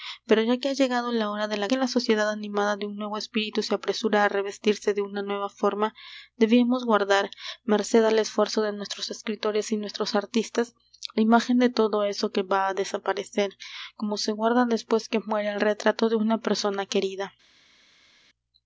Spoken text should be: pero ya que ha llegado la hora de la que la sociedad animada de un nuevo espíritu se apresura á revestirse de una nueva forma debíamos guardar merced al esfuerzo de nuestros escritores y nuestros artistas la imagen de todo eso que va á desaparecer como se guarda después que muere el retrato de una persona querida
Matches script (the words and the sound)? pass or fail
pass